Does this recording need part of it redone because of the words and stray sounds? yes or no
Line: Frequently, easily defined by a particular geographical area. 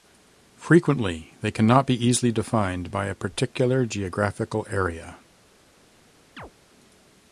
yes